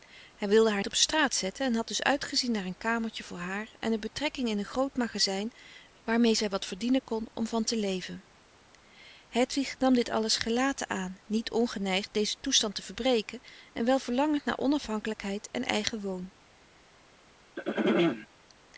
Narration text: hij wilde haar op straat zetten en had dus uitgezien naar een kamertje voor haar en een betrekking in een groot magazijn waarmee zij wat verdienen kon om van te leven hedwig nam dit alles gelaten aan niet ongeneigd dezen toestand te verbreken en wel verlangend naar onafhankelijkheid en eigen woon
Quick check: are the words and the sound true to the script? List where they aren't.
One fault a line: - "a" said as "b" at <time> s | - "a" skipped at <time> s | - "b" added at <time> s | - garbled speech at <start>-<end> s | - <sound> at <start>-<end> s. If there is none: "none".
- throat clearing at 17.6-18.3 s